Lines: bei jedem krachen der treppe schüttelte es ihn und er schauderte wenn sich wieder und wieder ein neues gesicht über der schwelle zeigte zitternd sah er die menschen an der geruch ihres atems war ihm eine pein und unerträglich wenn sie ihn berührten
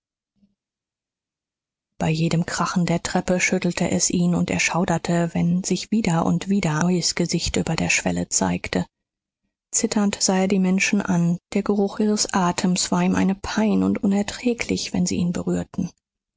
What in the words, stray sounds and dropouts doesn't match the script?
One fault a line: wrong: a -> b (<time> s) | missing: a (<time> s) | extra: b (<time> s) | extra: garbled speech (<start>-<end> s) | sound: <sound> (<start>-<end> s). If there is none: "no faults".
missing: ein (6.8 s)